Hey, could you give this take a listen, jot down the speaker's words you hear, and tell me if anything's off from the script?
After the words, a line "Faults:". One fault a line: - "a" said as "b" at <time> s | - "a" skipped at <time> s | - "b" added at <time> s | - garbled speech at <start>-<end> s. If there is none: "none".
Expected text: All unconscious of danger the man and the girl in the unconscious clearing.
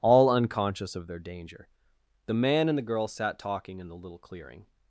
All unconscious of their danger the man and the girl sat talking in the little clearing.
Faults:
- "their" added at 1.1 s
- "sat talking" added at 3.1 s
- "unconscious" said as "little" at 4.0 s